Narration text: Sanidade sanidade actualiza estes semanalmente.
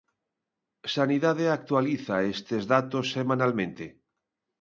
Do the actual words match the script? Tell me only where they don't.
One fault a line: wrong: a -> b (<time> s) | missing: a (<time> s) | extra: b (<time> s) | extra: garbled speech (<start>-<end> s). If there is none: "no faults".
missing: sanidade (1.4 s)
extra: datos (2.7 s)